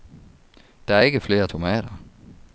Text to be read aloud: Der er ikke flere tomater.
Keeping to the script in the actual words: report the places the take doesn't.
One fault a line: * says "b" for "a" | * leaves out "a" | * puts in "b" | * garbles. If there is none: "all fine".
all fine